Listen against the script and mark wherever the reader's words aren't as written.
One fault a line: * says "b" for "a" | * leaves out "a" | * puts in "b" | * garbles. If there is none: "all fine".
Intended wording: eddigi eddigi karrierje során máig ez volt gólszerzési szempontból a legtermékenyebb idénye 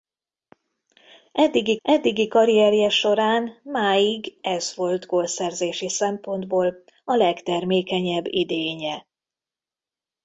all fine